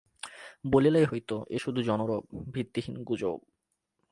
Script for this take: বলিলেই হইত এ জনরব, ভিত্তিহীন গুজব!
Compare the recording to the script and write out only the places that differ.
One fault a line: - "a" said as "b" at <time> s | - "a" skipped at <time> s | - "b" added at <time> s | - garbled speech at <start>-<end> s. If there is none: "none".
- "শুধু" added at 1.6 s